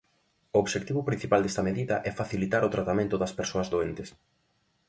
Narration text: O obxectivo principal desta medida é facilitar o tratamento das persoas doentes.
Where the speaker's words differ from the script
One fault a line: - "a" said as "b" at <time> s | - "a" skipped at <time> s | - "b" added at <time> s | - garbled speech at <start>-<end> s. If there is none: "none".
none